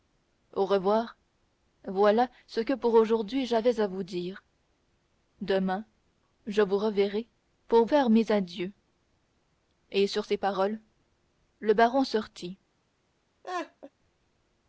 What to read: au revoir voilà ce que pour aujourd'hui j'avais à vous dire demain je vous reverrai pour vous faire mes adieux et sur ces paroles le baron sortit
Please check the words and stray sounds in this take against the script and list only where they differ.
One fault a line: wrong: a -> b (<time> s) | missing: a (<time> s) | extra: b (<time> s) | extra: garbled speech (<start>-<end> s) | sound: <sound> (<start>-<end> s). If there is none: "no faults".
missing: vous (7.8 s)
sound: laugh (13.4-13.9 s)